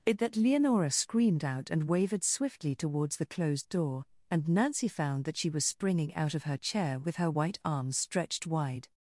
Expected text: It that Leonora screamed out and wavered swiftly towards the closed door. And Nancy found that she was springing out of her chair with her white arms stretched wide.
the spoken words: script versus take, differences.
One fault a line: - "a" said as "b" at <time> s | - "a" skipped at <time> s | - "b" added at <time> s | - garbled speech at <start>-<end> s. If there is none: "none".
none